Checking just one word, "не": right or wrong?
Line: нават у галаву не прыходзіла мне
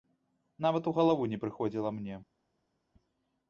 right